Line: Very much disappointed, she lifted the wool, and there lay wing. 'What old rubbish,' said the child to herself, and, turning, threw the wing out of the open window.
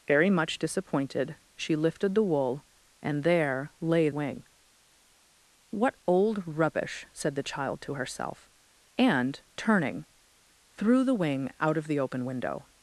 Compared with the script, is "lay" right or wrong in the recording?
right